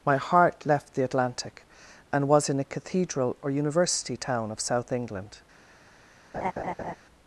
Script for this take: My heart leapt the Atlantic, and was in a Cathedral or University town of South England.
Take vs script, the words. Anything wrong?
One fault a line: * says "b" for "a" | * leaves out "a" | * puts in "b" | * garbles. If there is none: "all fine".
* says "left" for "leapt"